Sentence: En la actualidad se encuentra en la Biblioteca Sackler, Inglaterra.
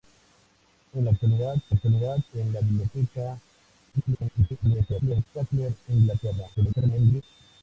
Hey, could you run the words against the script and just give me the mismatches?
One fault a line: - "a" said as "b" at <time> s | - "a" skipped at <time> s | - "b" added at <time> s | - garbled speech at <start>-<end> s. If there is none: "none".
- "encuentra" said as "actualidad" at 1.7 s
- garbled speech at 3.9-5.3 s
- garbled speech at 6.5-7.2 s